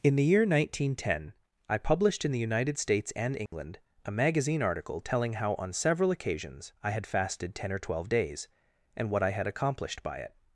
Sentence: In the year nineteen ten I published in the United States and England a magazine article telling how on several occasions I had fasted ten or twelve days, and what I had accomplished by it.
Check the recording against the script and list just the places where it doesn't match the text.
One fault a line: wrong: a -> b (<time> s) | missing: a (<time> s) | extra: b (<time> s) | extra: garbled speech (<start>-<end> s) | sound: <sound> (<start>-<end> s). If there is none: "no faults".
sound: dropout (3.5-3.5 s)